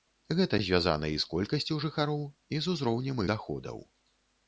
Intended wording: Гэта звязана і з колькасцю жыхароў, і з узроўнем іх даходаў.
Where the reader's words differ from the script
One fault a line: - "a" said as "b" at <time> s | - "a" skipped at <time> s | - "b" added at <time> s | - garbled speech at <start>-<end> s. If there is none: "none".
- "іх" skipped at 3.2 s